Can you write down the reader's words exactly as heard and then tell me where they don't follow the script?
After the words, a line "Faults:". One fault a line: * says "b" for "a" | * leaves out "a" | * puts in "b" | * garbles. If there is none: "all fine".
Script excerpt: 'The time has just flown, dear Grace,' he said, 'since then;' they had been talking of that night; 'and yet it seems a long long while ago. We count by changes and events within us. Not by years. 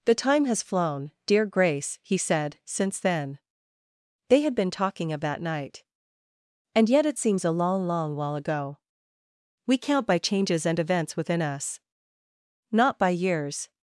'The time has flown, dear Grace,' he said, 'since then;' they had been talking of that night; 'and yet it seems a long long while ago. We count by changes and events within us. Not by years.
Faults:
* leaves out "just"